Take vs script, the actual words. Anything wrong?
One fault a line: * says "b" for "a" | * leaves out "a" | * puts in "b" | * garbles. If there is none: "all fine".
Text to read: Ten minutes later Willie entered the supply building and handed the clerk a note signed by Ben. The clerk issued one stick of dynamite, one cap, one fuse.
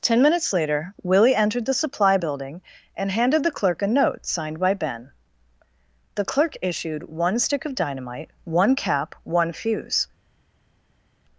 all fine